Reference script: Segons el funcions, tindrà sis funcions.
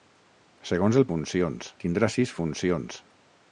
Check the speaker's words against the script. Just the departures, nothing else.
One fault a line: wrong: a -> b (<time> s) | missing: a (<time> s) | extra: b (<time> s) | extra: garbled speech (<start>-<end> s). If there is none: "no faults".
no faults